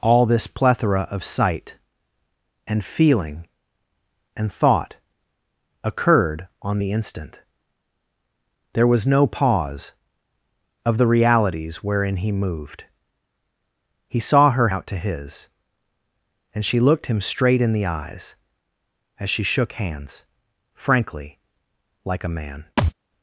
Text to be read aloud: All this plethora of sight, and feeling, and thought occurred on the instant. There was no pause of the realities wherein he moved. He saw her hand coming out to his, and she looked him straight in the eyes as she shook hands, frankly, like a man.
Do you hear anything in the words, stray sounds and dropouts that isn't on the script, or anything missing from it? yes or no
yes